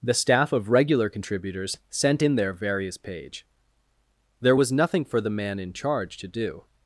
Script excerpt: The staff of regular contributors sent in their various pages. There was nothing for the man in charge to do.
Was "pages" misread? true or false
true